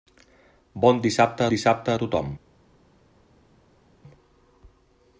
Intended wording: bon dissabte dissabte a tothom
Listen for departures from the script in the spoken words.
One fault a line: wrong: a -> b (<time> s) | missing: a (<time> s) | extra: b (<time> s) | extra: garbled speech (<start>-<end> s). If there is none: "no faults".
no faults